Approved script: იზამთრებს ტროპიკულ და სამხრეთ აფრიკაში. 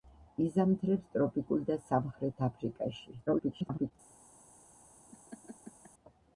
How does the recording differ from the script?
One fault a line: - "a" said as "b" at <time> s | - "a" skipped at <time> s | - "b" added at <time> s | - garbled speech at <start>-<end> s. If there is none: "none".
- garbled speech at 3.3-3.9 s